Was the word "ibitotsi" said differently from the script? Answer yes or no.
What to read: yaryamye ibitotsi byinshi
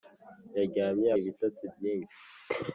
no